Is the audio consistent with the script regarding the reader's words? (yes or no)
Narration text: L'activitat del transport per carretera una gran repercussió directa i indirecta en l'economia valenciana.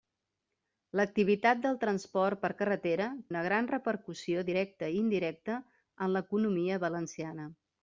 yes